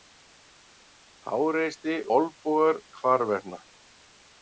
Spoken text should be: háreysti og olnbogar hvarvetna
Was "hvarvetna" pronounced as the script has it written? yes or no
yes